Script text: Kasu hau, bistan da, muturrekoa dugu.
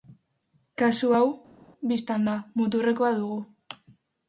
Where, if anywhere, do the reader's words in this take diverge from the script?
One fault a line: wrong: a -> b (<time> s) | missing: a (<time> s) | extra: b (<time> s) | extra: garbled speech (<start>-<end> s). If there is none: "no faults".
no faults